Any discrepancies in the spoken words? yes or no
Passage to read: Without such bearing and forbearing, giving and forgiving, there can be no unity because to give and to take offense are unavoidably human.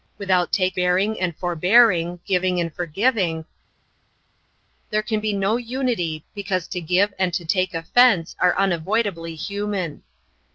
yes